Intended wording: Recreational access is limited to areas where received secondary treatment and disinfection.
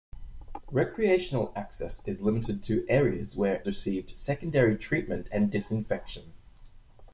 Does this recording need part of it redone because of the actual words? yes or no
no